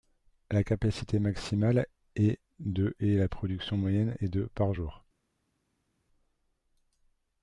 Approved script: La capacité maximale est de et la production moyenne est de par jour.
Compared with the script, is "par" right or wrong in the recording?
right